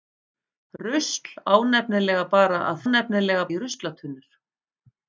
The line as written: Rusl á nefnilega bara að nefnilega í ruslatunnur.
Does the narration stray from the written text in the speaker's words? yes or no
no